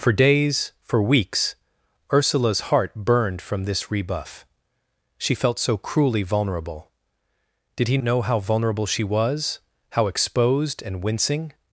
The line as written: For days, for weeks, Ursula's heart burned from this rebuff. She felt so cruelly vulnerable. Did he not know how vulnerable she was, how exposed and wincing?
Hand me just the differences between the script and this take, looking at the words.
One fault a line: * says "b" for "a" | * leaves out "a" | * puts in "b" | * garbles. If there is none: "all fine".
* leaves out "not"